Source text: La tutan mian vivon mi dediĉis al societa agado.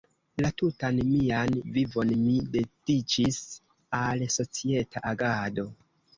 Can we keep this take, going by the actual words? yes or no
yes